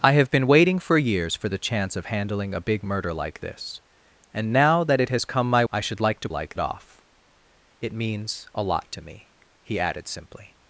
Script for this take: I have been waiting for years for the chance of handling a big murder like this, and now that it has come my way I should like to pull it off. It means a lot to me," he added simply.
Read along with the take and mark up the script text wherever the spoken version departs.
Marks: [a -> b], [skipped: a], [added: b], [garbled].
I have been waiting for years for the chance of handling a big murder like this, and now that it has come my [skipped: way] I should like to [pull -> like] it off. It means a lot to me," he added simply.